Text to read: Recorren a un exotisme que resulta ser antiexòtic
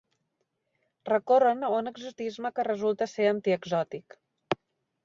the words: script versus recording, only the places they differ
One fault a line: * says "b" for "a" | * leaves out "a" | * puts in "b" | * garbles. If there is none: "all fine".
all fine